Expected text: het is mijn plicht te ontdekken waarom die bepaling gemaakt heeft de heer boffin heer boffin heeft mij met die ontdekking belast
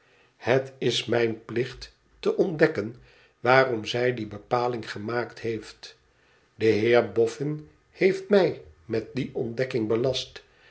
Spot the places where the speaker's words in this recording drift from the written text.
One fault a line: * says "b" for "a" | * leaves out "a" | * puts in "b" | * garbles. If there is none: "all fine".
* puts in "zij"
* leaves out "heer boffin"